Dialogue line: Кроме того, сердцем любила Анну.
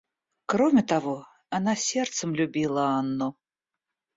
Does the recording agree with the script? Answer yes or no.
no